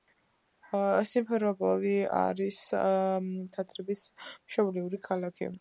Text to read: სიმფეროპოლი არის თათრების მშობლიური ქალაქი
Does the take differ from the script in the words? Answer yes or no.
no